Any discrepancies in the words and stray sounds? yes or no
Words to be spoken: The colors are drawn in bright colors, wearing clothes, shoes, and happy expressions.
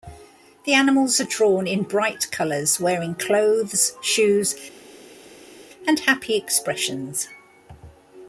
yes